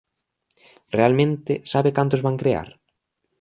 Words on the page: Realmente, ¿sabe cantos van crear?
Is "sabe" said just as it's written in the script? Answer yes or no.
yes